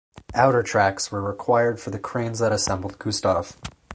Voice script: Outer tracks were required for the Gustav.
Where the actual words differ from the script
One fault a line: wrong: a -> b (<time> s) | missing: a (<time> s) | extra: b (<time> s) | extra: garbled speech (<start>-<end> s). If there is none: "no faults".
extra: cranes that assembled (2.0 s)